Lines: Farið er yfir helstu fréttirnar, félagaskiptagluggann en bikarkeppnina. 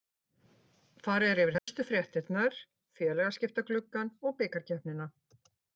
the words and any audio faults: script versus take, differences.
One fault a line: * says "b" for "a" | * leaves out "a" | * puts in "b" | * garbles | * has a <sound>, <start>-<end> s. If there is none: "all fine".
* has a dropout, 1.6-1.7 s
* says "og" for "en"